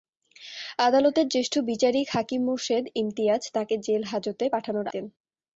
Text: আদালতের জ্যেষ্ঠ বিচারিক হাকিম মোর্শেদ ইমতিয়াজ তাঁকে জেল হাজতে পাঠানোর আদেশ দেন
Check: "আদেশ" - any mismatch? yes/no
yes